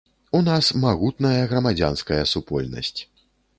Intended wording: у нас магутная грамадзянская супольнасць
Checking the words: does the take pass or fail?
pass